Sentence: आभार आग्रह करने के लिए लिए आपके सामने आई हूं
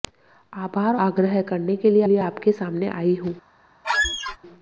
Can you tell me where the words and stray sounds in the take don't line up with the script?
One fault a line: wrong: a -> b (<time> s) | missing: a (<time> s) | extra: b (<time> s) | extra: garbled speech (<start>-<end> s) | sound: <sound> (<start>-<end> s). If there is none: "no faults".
sound: squeak (3.8-4.4 s)